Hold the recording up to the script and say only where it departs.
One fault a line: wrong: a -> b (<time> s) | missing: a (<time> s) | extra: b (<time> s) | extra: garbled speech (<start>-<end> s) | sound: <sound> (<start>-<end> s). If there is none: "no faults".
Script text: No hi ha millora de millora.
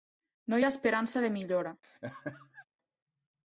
wrong: millora -> esperança (0.7 s)
sound: laugh (1.8-2.6 s)